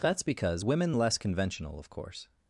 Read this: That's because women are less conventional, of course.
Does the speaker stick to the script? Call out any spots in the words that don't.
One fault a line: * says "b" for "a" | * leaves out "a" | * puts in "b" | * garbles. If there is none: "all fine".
* leaves out "are"